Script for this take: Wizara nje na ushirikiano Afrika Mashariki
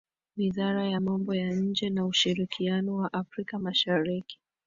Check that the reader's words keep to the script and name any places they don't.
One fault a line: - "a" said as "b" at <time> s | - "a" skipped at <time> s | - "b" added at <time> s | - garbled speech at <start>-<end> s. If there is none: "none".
- "ya Mambo ya" added at 0.9 s
- "wa" added at 2.9 s